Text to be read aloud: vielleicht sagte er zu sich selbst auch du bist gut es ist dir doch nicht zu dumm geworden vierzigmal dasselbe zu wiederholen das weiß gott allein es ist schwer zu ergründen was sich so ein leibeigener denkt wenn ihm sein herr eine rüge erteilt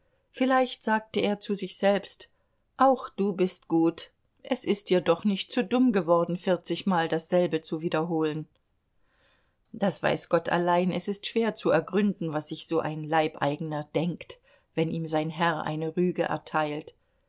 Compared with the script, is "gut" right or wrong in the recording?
right